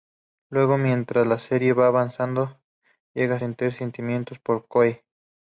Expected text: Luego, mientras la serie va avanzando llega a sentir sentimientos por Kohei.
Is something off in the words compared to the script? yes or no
no